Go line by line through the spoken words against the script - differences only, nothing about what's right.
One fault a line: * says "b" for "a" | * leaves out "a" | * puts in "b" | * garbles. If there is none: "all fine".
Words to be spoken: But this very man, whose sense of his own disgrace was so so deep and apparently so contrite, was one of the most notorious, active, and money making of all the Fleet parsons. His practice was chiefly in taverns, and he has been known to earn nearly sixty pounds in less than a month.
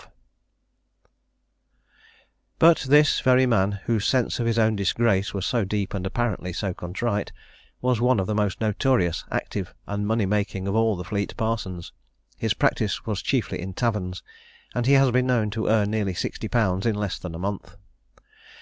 * leaves out "so"